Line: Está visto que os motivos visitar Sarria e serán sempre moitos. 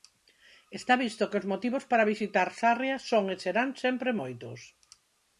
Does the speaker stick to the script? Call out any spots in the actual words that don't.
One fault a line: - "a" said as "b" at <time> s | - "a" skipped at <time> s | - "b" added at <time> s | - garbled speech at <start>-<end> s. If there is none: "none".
- "para" added at 1.9 s
- "son" added at 3.1 s